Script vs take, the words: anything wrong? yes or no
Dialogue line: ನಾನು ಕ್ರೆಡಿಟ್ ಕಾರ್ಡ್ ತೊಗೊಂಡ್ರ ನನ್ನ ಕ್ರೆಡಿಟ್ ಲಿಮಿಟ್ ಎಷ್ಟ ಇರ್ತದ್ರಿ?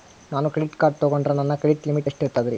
no